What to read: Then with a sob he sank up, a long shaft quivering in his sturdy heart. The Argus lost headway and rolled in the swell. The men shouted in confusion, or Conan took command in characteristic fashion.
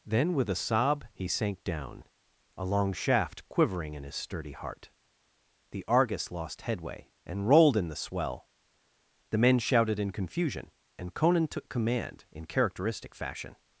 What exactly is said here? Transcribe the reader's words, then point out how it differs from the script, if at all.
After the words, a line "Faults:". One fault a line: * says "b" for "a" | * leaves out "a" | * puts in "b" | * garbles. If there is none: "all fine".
Then with a sob he sank down, a long shaft quivering in his sturdy heart. The Argus lost headway and rolled in the swell. The men shouted in confusion, and Conan took command in characteristic fashion.
Faults:
* says "down" for "up"
* says "and" for "or"